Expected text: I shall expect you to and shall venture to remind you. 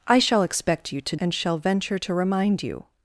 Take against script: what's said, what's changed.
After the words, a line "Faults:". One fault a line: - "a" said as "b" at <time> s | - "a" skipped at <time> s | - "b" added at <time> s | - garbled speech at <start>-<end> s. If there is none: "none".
I shall expect you to and shall venture to remind you.
Faults:
none